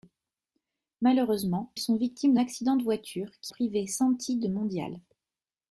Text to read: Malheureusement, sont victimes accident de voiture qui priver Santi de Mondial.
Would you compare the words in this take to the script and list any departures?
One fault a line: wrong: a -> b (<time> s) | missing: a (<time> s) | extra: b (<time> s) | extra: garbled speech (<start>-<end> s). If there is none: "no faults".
no faults